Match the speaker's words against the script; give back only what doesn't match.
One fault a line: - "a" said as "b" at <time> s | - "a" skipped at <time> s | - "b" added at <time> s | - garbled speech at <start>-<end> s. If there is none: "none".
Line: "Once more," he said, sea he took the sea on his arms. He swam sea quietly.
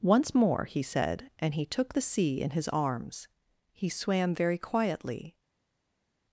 - "sea" said as "and" at 1.4 s
- "on" said as "in" at 2.4 s
- "sea" said as "very" at 4.3 s